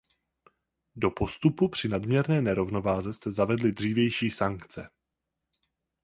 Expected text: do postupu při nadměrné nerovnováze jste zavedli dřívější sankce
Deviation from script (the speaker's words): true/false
false